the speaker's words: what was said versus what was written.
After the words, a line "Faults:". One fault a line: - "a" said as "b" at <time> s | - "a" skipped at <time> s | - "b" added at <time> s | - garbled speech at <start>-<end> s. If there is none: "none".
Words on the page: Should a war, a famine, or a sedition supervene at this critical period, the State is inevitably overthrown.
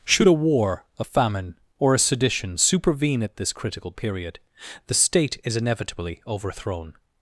Should a war, a famine, or a sedition supervene at this critical period, the State is inevitably overthrown.
Faults:
none